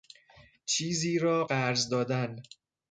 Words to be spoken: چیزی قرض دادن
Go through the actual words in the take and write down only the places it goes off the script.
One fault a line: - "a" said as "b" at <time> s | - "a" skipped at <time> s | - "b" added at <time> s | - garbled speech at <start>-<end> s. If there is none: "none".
- "را" added at 1.2 s